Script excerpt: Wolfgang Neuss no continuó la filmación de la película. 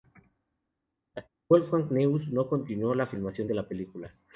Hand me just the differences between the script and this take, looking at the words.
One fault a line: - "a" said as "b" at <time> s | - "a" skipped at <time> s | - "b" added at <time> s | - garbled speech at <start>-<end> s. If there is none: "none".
none